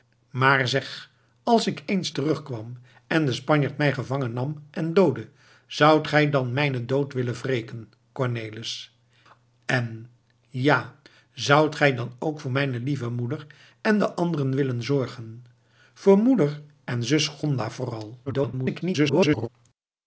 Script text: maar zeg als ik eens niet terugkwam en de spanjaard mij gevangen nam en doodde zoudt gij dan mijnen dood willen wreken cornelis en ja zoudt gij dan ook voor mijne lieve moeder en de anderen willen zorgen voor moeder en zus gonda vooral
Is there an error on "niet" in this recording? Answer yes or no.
yes